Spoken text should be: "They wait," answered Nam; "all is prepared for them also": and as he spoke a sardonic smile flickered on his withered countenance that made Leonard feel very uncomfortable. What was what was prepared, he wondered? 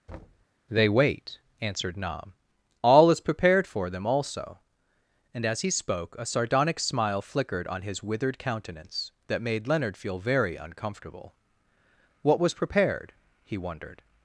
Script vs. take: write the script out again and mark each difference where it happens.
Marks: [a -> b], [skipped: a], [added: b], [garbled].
"They wait," answered Nam; "all is prepared for them also": and as he spoke a sardonic smile flickered on his withered countenance that made Leonard feel very uncomfortable. What was [skipped: what was] prepared, he wondered?